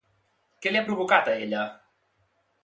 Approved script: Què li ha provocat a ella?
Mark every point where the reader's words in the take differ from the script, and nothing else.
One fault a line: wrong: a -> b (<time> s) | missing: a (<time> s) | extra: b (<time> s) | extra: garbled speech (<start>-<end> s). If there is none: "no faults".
no faults